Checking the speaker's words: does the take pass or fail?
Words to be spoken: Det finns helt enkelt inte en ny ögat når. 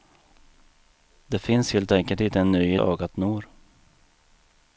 pass